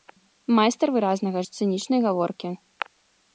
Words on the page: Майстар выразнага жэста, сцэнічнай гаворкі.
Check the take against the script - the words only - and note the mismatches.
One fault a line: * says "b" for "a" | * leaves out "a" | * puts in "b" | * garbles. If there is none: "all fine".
* leaves out "жэста"